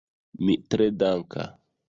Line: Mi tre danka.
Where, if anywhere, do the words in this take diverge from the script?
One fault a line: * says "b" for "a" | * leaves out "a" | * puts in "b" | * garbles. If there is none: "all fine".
all fine